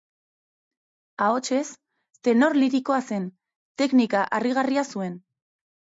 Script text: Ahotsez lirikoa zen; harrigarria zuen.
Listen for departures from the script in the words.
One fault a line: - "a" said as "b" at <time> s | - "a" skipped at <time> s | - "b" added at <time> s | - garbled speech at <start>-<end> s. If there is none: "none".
- "tenor" added at 2.3 s
- "teknika" added at 3.8 s